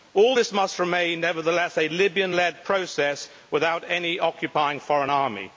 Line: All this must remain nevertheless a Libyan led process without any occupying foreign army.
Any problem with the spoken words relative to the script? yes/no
no